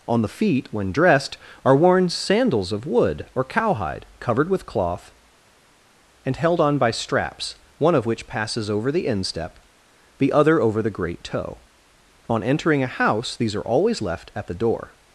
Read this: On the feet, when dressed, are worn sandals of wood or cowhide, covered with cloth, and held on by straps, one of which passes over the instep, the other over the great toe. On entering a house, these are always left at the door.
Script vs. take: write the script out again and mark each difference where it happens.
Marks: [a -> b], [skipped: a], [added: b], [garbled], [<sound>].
On the feet, when dressed, are worn sandals of wood or cowhide, covered with cloth, and held on by straps, one of which passes over the instep, the other over the great toe. On entering a house, these are always left at the door.